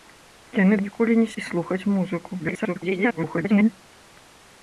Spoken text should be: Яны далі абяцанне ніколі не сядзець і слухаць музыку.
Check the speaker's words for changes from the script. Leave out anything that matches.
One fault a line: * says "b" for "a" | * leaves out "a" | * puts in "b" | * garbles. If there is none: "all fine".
* leaves out "далі абяцанне"
* leaves out "сядзець"
* garbles